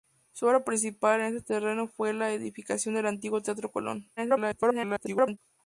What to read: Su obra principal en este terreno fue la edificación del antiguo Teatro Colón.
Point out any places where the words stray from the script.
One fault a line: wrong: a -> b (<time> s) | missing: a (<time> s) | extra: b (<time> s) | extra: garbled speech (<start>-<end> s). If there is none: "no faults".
extra: garbled speech (4.2-5.4 s)